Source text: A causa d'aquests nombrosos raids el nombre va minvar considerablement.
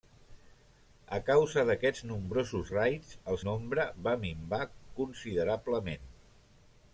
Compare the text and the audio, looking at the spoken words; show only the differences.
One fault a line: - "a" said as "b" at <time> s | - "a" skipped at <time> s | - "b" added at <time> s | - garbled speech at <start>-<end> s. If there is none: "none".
none